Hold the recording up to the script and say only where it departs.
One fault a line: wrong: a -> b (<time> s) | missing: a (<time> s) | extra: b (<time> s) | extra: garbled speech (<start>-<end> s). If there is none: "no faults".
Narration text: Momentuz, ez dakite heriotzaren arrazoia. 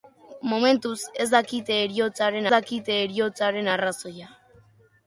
extra: dakite heriotzaren (2.5 s)